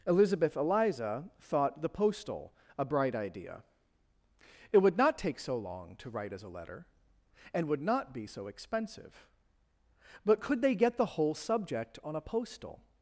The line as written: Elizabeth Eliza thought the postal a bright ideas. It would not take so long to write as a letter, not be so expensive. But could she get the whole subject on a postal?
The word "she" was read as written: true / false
false